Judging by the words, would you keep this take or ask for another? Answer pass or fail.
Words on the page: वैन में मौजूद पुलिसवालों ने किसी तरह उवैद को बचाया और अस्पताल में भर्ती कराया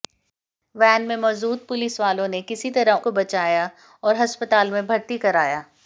fail